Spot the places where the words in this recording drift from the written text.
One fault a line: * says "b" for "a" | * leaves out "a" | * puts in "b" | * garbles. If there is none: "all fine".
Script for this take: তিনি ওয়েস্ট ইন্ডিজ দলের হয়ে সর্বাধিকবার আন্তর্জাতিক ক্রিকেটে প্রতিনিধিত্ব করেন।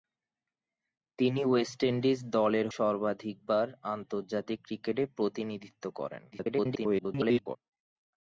* leaves out "হয়ে"
* garbles